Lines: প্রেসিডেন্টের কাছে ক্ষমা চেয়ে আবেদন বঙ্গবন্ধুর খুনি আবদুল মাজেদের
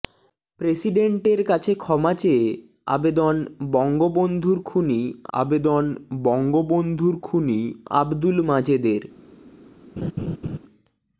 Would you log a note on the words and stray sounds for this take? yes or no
yes